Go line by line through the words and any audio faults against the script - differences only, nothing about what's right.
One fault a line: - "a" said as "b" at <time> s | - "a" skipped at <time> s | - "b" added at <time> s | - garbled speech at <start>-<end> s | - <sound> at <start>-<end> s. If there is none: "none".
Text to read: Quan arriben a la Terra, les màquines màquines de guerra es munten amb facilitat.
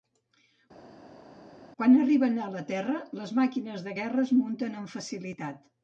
- "màquines" skipped at 3.8 s